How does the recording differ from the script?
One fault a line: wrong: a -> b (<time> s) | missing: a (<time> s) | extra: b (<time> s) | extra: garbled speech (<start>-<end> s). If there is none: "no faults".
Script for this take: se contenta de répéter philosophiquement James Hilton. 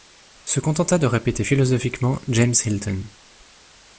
no faults